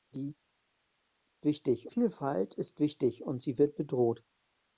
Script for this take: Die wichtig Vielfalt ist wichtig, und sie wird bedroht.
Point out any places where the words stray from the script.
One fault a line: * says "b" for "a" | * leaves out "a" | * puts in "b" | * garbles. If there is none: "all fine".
all fine